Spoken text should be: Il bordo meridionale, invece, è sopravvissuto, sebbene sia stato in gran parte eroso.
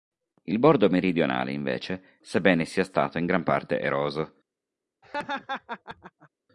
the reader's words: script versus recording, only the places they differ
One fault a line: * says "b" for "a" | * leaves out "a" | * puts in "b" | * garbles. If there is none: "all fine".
* leaves out "è sopravvissuto"